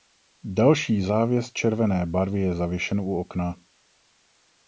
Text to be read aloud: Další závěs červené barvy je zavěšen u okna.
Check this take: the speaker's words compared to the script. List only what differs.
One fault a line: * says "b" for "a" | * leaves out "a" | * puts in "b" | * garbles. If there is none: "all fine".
all fine